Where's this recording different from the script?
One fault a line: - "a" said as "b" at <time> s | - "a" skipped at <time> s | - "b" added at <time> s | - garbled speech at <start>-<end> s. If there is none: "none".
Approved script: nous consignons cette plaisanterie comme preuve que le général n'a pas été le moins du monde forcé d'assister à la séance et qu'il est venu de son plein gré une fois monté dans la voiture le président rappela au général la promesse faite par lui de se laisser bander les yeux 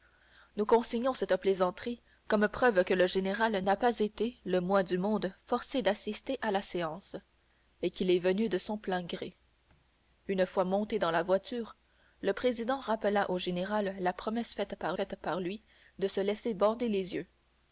- "faite par" added at 14.9 s